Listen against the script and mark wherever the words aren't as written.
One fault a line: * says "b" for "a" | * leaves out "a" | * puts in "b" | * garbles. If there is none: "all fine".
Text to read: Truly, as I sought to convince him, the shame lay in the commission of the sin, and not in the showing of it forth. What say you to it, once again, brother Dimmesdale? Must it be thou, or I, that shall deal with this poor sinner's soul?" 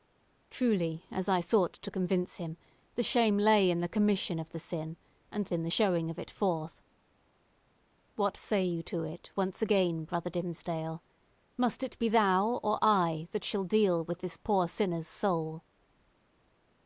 * leaves out "not"